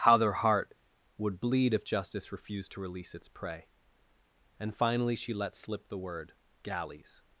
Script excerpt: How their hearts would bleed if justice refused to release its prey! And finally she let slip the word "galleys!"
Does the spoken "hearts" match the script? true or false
false